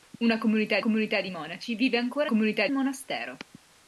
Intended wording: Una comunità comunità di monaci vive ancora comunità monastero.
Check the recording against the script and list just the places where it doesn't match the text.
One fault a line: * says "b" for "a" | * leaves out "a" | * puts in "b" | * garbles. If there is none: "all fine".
all fine